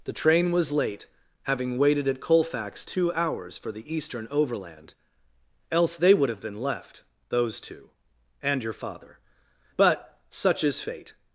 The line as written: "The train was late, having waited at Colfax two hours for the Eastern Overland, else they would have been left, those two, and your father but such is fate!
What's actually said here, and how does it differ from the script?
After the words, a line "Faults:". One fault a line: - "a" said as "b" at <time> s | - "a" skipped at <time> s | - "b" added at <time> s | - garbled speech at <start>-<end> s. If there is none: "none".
"The train was late, having waited at Colfax two hours for the Eastern Overland, else they would have been left, those two, and your father but such is fate!
Faults:
none